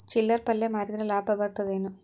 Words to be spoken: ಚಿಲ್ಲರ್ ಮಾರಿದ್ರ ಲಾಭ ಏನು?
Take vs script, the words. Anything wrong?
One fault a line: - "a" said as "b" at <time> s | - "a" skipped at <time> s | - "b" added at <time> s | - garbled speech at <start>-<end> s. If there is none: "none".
- "ಪಲ್ಯ" added at 0.5 s
- "ಬರತದ" added at 1.4 s